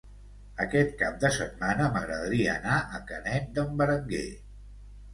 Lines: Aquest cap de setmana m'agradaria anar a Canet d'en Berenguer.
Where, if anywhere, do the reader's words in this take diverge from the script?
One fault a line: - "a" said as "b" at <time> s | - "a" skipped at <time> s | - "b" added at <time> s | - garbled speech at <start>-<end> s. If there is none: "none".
none